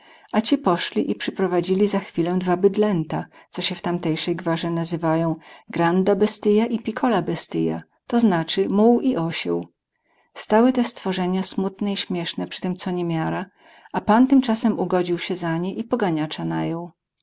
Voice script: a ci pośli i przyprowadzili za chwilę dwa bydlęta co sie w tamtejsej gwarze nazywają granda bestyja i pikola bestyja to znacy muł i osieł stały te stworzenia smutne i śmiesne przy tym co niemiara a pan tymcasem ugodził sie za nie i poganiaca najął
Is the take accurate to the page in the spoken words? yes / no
yes